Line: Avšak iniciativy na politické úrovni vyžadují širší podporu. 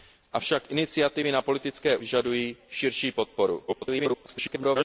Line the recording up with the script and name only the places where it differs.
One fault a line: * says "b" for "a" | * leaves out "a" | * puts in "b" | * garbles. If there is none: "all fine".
* leaves out "úrovni"
* garbles